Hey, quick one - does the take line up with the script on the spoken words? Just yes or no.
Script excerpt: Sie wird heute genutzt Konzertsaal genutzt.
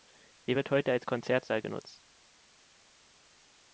no